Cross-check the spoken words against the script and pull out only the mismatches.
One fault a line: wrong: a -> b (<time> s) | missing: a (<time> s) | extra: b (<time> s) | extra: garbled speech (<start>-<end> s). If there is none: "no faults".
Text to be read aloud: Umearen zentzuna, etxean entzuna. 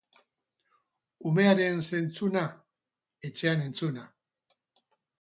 no faults